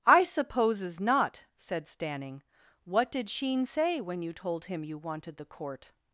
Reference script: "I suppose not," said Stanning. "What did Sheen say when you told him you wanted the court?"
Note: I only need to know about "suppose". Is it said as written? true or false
false